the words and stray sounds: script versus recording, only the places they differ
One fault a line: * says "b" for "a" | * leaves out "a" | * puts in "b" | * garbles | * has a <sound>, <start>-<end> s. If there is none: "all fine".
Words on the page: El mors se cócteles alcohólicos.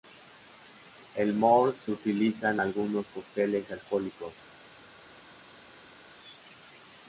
* puts in "utiliza en algunos"